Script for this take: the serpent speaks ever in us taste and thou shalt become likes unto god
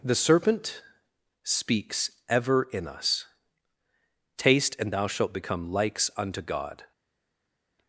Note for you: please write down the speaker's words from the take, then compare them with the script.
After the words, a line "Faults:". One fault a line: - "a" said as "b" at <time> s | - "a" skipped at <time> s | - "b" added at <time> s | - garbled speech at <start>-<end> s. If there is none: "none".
the serpent speaks ever in us taste and thou shalt become likes unto god
Faults:
none